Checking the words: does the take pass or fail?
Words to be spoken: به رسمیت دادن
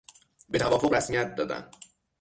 fail